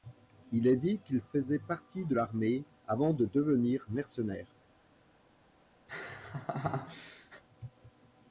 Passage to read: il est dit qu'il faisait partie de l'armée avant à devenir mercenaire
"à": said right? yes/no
no